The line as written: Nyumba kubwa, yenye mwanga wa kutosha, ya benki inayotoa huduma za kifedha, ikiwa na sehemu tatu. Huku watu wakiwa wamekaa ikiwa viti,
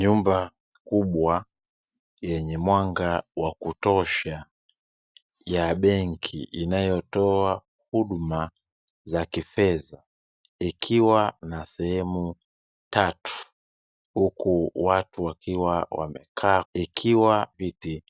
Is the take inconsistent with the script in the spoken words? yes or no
no